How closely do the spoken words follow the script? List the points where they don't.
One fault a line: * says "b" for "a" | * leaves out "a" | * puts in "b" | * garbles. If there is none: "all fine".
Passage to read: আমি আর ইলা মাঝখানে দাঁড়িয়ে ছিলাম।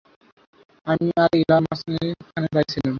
all fine